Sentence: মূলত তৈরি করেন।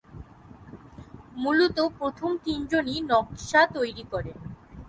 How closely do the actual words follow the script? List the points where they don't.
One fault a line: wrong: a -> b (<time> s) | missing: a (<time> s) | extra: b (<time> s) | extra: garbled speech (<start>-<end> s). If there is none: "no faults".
extra: প্রথম তিনজনই নকশা (2.0 s)